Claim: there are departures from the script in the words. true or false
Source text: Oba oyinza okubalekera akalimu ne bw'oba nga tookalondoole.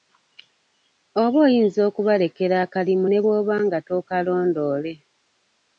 false